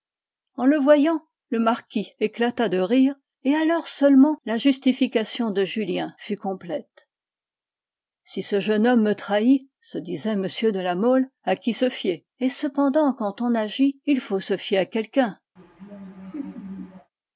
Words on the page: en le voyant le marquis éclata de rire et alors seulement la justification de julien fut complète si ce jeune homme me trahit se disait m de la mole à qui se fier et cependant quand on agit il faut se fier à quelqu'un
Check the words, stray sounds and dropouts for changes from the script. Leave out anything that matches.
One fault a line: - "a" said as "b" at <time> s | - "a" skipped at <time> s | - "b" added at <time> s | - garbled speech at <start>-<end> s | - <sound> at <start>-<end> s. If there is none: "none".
- laugh at 15.6-17.1 s